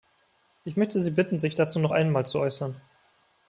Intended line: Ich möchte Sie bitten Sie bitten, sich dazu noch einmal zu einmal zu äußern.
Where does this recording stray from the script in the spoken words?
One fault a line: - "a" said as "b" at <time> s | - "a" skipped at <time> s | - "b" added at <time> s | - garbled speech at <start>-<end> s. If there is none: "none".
- "Sie bitten" skipped at 1.4 s
- "einmal zu" skipped at 2.4 s